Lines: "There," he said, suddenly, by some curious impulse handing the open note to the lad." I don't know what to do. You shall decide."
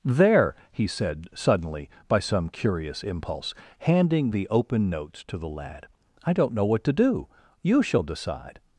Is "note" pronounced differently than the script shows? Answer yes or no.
yes